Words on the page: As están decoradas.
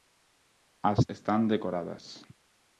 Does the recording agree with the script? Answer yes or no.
yes